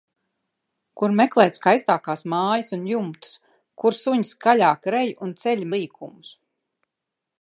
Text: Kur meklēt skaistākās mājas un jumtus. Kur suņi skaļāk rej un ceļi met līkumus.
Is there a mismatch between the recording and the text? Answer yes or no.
yes